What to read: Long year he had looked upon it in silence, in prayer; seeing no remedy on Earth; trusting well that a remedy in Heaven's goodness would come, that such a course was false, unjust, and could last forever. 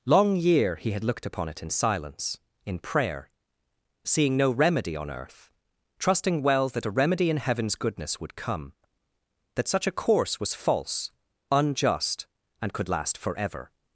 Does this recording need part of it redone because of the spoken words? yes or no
no